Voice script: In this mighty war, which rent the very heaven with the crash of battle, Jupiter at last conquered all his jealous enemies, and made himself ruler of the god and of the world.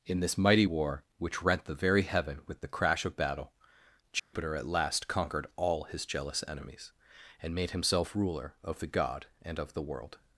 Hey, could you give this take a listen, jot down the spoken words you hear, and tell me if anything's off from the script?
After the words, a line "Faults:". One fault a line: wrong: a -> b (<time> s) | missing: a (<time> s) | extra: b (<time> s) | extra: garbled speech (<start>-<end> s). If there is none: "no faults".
In this mighty war, which rent the very heaven with the crash of battle, Jupiter at last conquered all his jealous enemies, and made himself ruler of the god and of the world.
Faults:
no faults